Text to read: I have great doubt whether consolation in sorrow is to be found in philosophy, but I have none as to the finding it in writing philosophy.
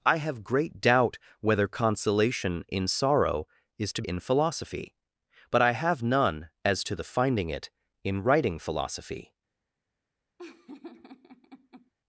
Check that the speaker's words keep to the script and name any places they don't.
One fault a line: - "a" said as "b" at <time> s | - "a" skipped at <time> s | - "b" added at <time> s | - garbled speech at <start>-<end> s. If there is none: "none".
- "be found" skipped at 4.0 s